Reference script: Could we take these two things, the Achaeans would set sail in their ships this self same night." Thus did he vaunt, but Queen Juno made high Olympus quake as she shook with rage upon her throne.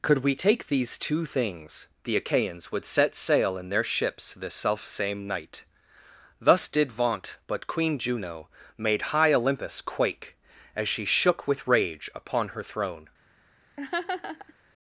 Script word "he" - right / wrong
wrong